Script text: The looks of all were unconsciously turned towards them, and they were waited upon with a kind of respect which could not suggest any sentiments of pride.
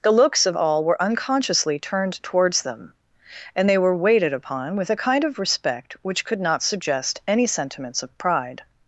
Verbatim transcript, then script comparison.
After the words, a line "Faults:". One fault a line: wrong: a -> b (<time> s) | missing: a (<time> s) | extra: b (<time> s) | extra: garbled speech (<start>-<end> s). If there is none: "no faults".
The looks of all were unconsciously turned towards them, and they were waited upon with a kind of respect which could not suggest any sentiments of pride.
Faults:
no faults